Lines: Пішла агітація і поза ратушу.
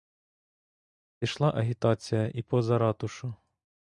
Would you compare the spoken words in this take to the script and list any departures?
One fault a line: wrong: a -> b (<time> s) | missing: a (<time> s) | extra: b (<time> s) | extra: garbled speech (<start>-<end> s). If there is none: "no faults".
no faults